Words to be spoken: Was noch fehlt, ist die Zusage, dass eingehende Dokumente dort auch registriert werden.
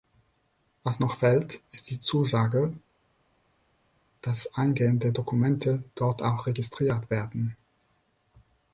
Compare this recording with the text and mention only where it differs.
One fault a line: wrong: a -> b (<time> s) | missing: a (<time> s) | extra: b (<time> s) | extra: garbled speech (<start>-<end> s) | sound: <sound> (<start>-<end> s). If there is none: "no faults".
no faults